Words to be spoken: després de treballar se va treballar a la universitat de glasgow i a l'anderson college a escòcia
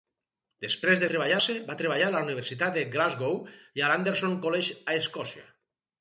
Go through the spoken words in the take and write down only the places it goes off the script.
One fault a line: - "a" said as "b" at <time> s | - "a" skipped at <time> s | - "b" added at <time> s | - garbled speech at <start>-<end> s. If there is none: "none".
none